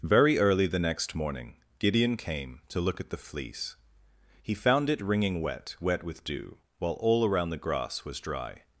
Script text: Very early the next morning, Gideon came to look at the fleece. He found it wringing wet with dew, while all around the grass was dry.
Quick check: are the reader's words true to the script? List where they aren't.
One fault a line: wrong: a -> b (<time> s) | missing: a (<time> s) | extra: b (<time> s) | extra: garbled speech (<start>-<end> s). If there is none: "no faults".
extra: wet (5.8 s)